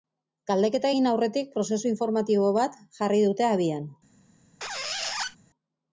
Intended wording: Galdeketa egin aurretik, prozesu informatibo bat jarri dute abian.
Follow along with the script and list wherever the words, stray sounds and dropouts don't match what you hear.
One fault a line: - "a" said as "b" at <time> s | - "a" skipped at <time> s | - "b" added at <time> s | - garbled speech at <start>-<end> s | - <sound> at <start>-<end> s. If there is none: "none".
- squeak at 4.6-5.4 s